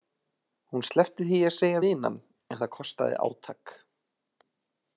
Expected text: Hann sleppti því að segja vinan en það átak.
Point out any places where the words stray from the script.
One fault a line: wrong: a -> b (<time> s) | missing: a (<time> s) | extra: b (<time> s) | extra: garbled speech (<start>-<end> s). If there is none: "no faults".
wrong: Hann -> Hún (0.7 s)
extra: kostaði (2.8 s)